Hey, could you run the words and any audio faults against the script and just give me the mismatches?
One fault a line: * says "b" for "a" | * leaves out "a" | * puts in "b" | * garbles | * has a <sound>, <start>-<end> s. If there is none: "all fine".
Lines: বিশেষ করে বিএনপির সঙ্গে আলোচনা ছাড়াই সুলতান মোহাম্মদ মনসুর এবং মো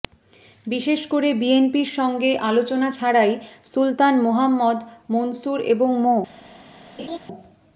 * has a laugh, 7.0-7.2 s